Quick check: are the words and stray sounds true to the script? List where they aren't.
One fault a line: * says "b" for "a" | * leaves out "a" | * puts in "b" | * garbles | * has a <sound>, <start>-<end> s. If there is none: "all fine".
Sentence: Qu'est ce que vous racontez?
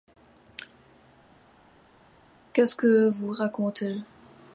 all fine